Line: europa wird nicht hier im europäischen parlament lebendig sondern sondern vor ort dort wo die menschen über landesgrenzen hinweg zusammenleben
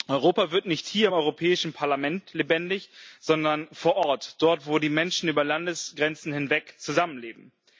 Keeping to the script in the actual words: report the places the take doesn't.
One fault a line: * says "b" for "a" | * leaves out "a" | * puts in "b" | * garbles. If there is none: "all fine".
* leaves out "sondern"